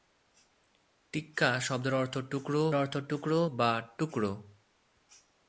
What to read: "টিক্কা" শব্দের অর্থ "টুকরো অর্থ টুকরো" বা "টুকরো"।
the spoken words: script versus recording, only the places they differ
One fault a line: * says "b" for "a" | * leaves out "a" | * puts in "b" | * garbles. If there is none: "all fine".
all fine